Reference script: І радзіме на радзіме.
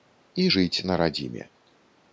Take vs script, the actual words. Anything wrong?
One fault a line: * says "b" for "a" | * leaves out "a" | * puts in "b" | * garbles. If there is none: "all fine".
* says "жыць" for "радзіме"